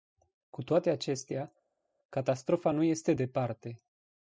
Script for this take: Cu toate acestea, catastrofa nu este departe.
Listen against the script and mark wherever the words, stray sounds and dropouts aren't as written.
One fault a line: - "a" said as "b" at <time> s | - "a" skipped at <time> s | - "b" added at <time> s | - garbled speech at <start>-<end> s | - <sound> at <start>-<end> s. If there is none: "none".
none